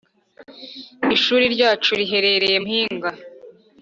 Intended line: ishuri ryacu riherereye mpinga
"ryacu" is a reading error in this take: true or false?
false